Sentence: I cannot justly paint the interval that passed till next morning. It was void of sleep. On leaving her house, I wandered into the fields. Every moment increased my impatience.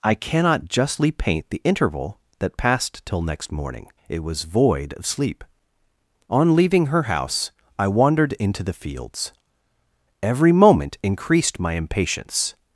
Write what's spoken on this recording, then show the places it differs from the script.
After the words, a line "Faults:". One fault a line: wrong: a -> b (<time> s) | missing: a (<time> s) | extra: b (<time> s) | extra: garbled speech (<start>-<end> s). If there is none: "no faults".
I cannot justly paint the interval that passed till next morning. It was void of sleep. On leaving her house, I wandered into the fields. Every moment increased my impatience.
Faults:
no faults